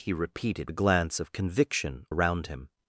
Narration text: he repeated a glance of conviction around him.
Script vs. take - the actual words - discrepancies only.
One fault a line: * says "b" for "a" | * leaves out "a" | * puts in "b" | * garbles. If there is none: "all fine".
all fine